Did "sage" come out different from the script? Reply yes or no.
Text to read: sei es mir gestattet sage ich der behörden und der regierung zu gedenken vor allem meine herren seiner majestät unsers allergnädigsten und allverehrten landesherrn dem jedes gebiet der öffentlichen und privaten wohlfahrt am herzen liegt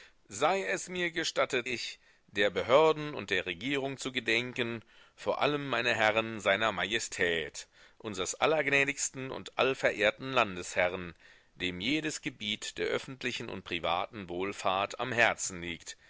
yes